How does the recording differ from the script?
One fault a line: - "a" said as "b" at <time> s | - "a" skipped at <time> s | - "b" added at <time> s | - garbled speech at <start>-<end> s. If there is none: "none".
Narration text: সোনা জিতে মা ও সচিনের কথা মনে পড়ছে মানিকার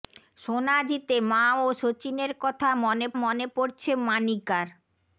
- "মনে" added at 3.2 s